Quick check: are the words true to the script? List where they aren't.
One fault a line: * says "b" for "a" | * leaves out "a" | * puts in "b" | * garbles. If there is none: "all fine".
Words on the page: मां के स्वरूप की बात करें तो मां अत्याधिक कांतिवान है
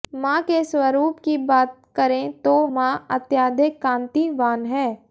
all fine